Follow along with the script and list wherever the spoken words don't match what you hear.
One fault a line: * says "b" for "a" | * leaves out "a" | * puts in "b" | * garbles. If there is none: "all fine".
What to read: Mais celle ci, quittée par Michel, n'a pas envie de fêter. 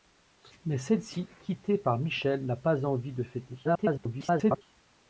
* garbles